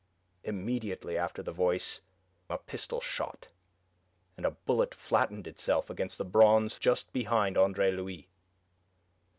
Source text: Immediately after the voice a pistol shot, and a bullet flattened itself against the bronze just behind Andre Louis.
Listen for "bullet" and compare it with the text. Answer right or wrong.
right